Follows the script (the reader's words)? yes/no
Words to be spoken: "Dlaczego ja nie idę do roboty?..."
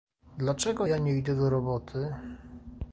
yes